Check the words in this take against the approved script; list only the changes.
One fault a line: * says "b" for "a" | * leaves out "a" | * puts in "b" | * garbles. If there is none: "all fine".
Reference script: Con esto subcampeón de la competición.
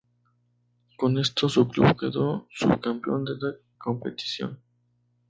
* puts in "su club quedó"